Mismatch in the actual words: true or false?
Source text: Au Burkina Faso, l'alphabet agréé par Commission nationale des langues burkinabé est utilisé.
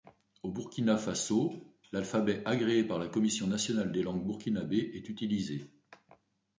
true